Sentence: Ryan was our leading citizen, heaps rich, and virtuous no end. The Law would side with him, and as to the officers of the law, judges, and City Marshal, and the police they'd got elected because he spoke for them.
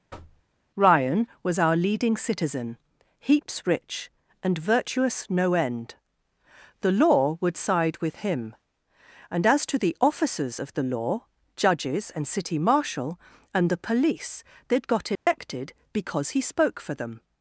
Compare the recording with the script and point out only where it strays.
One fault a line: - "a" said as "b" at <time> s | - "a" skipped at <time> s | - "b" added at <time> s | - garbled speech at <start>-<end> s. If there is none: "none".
none